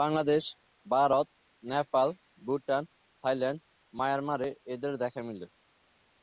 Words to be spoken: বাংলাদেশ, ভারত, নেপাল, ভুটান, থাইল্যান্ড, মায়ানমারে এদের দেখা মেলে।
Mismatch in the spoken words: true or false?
false